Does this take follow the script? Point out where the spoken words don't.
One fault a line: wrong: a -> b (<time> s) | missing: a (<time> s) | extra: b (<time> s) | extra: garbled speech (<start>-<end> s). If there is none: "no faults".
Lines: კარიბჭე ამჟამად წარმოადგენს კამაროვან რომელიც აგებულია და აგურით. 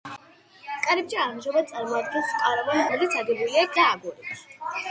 no faults